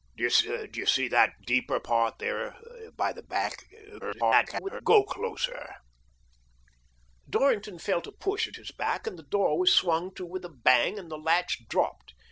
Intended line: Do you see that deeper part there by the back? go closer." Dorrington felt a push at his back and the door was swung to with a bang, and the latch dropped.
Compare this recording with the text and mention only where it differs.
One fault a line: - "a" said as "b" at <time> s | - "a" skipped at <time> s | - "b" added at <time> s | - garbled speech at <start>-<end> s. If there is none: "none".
- garbled speech at 4.0-4.8 s